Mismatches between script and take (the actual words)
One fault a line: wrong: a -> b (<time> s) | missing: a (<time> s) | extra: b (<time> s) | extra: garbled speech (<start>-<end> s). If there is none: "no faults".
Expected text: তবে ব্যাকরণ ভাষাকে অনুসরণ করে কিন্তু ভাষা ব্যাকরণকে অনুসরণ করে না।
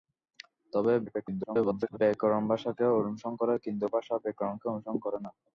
extra: garbled speech (1.1-2.0 s)